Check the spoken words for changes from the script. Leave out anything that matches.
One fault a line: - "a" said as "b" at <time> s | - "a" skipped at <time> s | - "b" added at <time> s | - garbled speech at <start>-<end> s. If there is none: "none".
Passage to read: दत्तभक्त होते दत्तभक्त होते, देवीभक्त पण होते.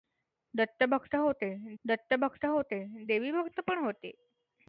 none